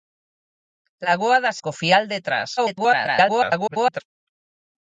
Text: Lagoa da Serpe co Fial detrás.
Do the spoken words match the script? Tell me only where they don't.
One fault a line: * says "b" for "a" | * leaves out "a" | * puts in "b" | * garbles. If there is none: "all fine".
* leaves out "Serpe"
* garbles